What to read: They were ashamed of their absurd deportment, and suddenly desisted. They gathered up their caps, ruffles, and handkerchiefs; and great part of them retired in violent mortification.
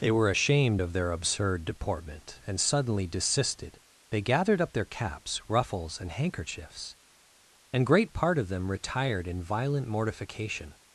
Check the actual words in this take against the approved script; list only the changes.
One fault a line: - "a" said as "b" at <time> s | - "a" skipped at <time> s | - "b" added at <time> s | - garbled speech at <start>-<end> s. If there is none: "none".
none